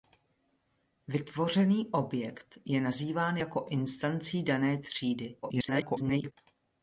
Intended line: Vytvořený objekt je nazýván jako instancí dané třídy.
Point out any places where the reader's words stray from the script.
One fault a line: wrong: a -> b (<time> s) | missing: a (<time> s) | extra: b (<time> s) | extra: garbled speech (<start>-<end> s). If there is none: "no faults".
extra: garbled speech (5.4-6.3 s)